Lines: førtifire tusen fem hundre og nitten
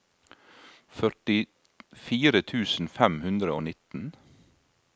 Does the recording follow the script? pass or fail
pass